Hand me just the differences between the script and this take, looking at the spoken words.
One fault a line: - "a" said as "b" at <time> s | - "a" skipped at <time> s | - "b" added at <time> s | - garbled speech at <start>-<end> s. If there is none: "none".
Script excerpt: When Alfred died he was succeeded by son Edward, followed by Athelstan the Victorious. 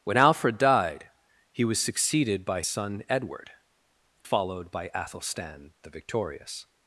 none